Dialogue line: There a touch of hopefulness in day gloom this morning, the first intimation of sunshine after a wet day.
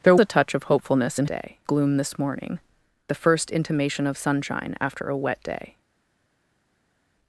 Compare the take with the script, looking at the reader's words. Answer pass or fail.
pass